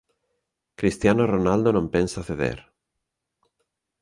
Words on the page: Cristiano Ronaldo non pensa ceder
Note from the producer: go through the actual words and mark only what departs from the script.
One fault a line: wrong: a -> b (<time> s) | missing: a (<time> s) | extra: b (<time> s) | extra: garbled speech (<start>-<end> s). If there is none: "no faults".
no faults